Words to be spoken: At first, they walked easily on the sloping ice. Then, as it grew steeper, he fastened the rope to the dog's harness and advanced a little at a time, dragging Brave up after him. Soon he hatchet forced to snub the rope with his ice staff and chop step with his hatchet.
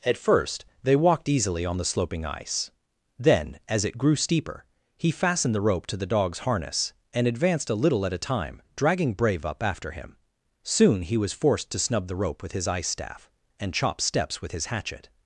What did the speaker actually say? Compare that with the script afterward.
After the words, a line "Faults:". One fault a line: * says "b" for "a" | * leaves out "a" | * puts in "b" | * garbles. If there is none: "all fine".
At first, they walked easily on the sloping ice. Then, as it grew steeper, he fastened the rope to the dog's harness and advanced a little at a time, dragging Brave up after him. Soon he was forced to snub the rope with his ice staff and chop steps with his hatchet.
Faults:
* says "was" for "hatchet"
* says "steps" for "step"